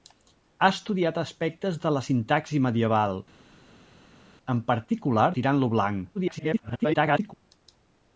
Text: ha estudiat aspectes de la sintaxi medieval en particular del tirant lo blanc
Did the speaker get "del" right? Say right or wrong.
wrong